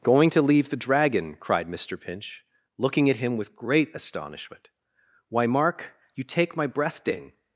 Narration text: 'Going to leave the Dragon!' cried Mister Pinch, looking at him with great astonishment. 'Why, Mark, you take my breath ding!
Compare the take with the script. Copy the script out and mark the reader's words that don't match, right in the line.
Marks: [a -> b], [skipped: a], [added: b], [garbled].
'Going to leave the Dragon!' cried Mister Pinch, looking at him with great astonishment. 'Why, Mark, you take my breath ding!